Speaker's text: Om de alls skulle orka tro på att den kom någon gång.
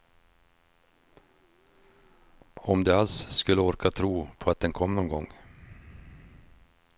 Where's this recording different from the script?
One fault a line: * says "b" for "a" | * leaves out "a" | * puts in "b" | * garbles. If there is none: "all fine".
all fine